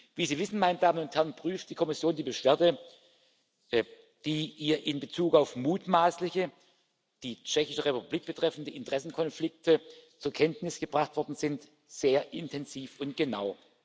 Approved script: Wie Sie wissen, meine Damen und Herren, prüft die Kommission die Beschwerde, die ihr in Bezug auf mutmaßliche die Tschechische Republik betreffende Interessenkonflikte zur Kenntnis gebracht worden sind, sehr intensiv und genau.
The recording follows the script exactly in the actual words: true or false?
true